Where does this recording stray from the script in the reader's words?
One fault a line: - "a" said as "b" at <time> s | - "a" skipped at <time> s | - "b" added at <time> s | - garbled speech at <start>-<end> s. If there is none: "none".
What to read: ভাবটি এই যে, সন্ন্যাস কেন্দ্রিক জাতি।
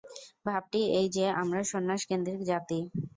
- "আমরা" added at 1.4 s